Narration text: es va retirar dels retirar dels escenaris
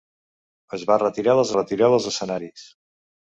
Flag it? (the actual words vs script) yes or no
no